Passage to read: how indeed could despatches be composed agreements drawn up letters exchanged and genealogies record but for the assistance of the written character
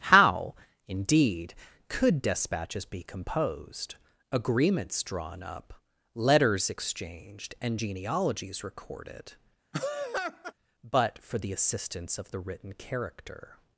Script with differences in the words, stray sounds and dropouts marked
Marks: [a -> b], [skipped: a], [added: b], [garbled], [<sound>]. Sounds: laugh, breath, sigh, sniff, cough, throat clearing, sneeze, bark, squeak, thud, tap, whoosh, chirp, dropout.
how indeed could despatches be composed agreements drawn up letters exchanged and genealogies [record -> recorded] [laugh] but for the assistance of the written character